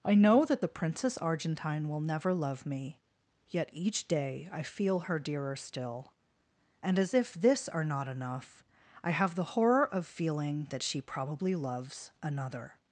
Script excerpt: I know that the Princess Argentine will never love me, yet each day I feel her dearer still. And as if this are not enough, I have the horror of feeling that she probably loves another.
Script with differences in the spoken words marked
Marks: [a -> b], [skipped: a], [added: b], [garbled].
I know that the Princess Argentine will never love me, yet each day I feel her dearer still. And as if this are not enough, I have the horror of feeling that she probably loves another.